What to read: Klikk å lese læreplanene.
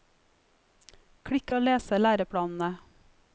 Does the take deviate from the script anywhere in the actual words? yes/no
no